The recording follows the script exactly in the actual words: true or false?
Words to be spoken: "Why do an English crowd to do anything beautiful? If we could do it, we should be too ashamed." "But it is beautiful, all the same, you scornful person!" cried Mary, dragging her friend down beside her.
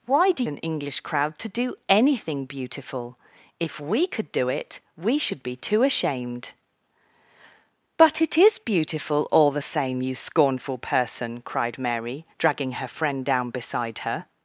true